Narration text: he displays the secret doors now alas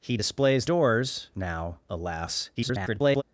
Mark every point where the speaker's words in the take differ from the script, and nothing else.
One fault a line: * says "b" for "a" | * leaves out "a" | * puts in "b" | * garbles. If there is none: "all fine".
* leaves out "the secret"
* garbles